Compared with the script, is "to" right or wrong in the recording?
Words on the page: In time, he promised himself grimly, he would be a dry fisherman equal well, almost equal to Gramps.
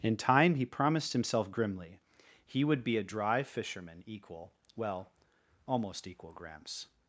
wrong